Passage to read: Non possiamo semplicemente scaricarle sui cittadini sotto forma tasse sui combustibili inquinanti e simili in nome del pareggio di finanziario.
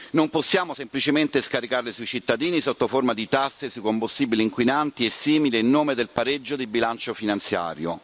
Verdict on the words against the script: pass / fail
fail